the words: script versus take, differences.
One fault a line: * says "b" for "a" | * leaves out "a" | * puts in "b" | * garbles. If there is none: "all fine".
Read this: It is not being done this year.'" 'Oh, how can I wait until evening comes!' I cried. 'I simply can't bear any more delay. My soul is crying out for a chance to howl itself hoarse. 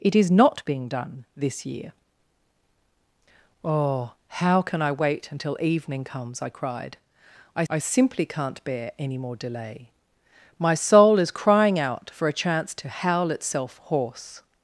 * puts in "I"